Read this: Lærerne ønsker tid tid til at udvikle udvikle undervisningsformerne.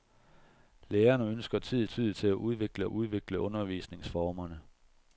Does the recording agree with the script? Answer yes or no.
yes